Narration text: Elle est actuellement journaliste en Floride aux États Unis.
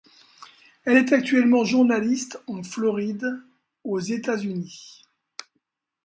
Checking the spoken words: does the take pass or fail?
pass